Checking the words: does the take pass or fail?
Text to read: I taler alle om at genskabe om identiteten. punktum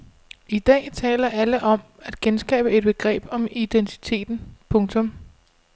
fail